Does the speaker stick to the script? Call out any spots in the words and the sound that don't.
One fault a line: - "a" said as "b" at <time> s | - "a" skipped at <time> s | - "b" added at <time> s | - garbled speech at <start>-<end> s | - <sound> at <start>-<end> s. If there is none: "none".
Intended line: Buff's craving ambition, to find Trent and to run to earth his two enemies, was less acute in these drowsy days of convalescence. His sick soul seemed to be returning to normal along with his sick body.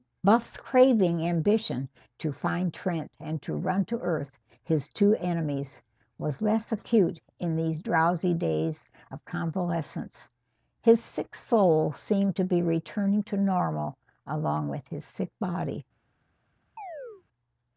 - chirp at 16.8-17.2 s